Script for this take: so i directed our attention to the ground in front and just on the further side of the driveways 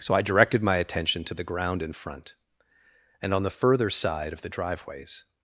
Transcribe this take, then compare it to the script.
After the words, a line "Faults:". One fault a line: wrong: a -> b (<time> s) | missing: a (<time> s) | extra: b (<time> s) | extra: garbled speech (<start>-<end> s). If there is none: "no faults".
so i directed my attention to the ground in front and on the further side of the driveways
Faults:
wrong: our -> my (0.6 s)
missing: just (3.3 s)